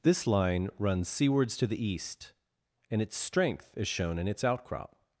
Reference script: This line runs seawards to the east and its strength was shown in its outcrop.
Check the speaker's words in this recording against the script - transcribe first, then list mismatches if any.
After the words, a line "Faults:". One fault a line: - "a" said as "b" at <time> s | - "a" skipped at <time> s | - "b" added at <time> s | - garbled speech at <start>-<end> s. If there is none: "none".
This line runs seawards to the east and its strength is shown in its outcrop.
Faults:
- "was" said as "is" at 3.8 s